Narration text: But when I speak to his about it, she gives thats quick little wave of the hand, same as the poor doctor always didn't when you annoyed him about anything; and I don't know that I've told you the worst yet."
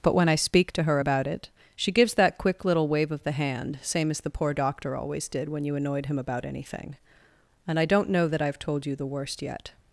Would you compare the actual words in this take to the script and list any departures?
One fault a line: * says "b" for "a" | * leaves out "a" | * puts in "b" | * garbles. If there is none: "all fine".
* says "her" for "his"
* says "that" for "thats"
* says "did" for "didn't"